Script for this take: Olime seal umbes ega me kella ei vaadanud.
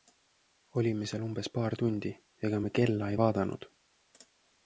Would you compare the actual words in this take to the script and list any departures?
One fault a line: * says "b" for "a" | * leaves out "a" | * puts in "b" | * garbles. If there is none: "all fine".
* puts in "paar tundi"